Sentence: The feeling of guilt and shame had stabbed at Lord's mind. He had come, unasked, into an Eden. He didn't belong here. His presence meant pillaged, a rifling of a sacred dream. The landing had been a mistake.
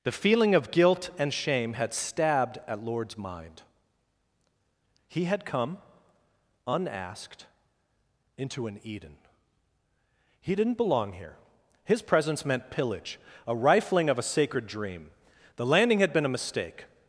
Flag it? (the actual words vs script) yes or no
yes